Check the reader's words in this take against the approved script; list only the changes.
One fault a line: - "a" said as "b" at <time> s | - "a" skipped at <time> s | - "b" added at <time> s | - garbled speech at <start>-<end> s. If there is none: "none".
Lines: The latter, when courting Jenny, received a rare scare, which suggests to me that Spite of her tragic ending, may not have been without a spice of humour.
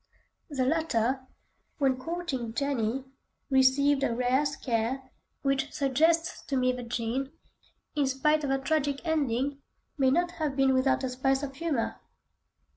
- "Jean in" added at 6.9 s